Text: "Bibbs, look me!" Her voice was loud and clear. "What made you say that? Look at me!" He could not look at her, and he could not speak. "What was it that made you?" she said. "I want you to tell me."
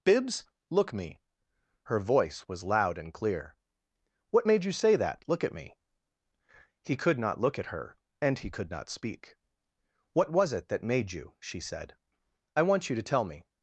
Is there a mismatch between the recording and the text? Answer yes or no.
no